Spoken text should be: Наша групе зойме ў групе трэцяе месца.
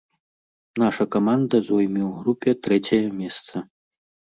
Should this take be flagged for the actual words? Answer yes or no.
yes